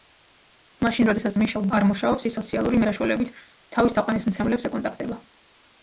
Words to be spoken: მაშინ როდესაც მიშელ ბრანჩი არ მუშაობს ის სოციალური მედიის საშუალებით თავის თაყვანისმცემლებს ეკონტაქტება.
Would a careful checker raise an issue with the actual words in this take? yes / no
yes